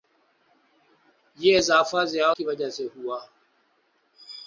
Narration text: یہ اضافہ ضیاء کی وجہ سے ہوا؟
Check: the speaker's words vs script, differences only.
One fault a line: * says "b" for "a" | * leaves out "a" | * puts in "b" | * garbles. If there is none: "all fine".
all fine